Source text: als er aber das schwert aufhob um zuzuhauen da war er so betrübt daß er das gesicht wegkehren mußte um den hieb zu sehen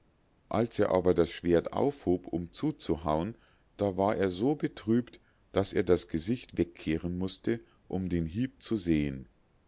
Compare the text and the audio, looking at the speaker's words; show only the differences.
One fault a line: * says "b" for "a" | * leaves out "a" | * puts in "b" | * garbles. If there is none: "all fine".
all fine